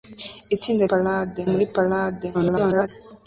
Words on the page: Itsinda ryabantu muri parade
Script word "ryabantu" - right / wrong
wrong